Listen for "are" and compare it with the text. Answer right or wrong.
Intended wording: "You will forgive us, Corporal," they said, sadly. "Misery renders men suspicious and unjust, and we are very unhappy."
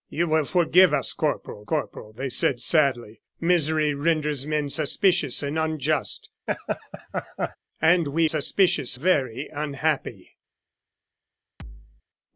wrong